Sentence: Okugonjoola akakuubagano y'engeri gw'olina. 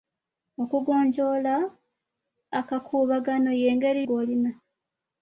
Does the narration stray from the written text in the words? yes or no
no